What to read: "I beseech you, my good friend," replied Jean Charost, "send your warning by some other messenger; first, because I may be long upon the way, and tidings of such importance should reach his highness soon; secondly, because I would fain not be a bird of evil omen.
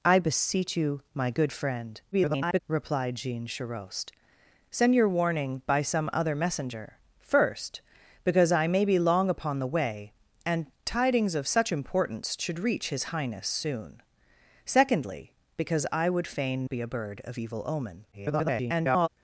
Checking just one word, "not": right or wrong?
wrong